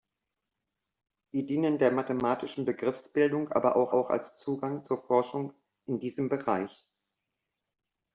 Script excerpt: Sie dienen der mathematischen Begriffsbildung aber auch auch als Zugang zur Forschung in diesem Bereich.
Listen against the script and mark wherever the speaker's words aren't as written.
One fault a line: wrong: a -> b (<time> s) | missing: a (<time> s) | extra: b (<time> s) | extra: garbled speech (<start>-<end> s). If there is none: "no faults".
no faults